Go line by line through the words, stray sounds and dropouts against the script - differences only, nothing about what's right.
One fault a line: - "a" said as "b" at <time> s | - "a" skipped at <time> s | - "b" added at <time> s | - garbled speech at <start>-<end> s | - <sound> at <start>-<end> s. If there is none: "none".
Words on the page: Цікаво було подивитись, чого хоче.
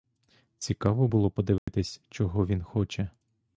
- dropout at 1.6-1.7 s
- "він" added at 2.5 s